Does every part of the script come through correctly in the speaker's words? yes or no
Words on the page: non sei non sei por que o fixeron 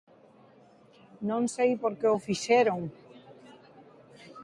no